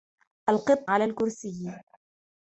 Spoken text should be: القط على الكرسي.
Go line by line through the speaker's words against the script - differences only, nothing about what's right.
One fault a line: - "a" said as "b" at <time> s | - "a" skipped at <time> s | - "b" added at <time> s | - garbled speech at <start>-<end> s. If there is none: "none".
none